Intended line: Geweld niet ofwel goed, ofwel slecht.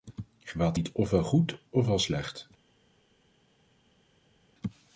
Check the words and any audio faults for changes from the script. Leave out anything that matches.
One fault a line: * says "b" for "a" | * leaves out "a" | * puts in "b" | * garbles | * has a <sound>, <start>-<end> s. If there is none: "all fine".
all fine